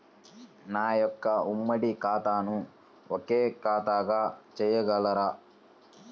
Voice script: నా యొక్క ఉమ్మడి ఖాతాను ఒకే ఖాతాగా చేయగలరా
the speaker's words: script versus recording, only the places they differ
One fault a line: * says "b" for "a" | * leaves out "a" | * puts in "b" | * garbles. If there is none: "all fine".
all fine